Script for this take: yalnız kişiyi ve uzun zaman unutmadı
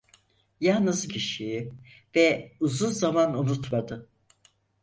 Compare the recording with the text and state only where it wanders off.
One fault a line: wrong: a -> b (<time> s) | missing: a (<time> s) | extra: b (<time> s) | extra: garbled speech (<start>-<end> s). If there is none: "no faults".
no faults